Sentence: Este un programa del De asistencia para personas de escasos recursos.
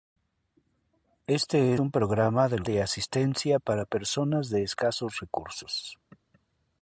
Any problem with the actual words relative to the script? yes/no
no